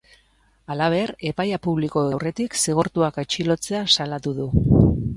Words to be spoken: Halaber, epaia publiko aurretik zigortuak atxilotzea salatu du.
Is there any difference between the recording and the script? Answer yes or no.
no